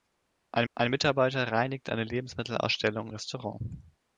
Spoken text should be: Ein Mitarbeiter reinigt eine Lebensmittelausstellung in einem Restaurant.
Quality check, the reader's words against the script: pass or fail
fail